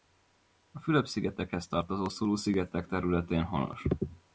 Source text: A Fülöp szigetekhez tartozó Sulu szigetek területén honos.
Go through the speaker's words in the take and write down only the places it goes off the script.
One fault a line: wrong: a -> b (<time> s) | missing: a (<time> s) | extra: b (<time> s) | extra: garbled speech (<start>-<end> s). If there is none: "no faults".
no faults